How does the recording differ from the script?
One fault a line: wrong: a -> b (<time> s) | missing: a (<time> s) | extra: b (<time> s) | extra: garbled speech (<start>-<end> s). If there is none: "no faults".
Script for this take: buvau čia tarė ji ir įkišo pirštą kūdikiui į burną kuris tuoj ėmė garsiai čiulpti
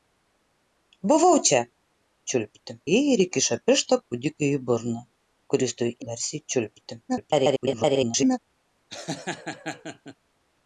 wrong: tarė -> čiulpti (2.3 s)
missing: ėmė (5.9 s)
extra: garbled speech (7.1-8.4 s)